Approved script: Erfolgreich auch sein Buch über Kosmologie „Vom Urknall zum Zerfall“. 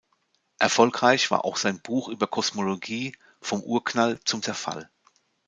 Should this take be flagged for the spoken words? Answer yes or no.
yes